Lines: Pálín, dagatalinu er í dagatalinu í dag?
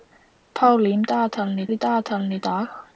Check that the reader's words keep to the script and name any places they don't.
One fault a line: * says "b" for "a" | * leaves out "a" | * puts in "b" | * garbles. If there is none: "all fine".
all fine